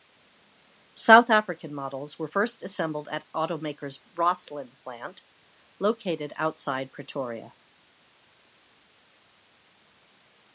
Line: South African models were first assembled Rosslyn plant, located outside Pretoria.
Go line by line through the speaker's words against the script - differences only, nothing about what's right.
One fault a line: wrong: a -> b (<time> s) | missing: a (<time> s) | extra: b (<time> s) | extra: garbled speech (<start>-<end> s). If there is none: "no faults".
extra: at Automaker's (3.1 s)